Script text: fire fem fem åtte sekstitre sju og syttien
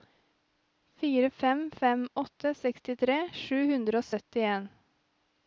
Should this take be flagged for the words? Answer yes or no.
yes